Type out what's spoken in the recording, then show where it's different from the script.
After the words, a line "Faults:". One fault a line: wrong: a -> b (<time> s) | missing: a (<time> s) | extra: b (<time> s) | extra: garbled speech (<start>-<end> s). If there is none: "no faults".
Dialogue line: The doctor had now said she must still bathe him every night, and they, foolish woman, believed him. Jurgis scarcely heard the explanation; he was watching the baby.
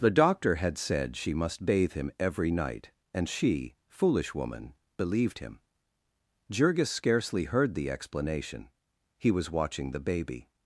The doctor had said she must bathe him every night, and she, foolish woman, believed him. Jurgis scarcely heard the explanation; he was watching the baby.
Faults:
missing: now (0.8 s)
missing: still (1.6 s)
wrong: they -> she (3.3 s)